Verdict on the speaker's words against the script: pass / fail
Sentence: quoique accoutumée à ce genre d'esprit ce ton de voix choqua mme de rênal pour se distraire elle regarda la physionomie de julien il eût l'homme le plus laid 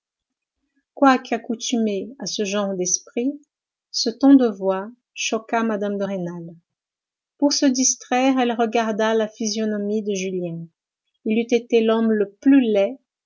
fail